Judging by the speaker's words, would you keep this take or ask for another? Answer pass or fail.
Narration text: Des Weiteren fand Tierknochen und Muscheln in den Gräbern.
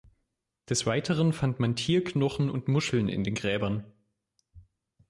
fail